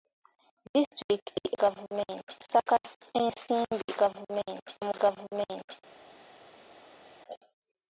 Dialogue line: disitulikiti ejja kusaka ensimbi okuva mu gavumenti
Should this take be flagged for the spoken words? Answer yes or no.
yes